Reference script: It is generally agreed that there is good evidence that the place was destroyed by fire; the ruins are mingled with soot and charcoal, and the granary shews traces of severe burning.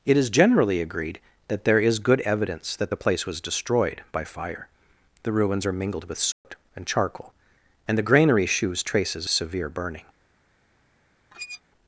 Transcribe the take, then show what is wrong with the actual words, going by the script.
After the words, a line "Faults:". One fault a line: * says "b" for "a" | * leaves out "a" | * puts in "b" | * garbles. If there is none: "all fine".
It is generally agreed that there is good evidence that the place was destroyed by fire; the ruins are mingled with soot and charcoal, and the granary shews traces severe burning.
Faults:
* leaves out "of"